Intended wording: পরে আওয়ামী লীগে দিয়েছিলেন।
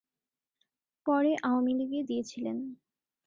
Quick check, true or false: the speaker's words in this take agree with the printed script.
true